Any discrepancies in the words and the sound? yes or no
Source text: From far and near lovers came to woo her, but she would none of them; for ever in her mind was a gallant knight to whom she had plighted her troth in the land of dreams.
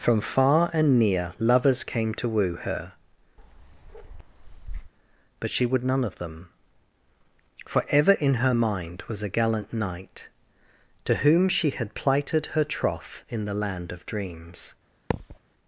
yes